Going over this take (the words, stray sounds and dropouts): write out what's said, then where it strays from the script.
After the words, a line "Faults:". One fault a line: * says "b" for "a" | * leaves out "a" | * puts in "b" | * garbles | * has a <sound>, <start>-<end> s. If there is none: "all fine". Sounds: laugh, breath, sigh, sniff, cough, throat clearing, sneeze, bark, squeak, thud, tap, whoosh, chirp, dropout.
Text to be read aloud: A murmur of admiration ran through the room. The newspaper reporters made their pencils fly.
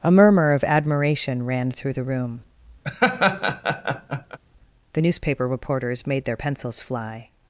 A murmur of admiration ran through the room. The newspaper reporters made their pencils fly.
Faults:
* has a laugh, 2.8-4.4 s